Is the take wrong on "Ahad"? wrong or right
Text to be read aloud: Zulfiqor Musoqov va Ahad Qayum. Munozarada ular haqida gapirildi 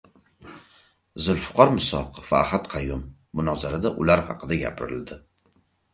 right